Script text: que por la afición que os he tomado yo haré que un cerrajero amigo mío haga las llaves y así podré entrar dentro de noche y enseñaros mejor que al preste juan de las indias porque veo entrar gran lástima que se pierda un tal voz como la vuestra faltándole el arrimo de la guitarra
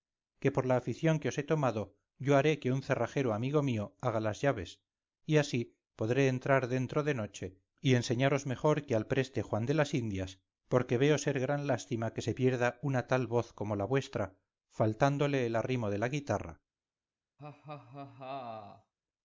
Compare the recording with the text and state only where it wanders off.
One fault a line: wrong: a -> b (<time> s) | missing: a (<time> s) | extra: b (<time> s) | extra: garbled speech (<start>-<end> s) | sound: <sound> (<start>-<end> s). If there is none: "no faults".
wrong: entrar -> ser (11.2 s)
wrong: un -> una (12.8 s)
sound: laugh (17.4-18.9 s)